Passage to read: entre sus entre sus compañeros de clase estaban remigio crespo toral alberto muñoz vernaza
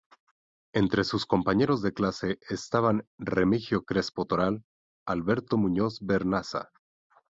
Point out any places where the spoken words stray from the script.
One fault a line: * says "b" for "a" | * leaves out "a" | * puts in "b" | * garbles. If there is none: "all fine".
* leaves out "entre sus"